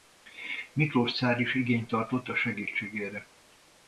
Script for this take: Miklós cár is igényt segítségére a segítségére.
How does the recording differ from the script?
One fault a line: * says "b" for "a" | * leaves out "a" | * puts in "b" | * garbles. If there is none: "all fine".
* says "tartott" for "segítségére"